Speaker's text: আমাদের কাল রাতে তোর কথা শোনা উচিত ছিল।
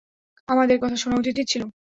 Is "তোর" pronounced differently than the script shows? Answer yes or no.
yes